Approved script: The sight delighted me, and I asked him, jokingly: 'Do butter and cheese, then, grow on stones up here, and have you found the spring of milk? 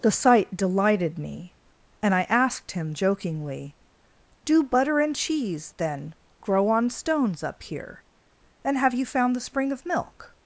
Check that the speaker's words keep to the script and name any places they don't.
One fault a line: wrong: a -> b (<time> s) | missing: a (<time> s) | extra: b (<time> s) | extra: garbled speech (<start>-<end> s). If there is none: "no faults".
no faults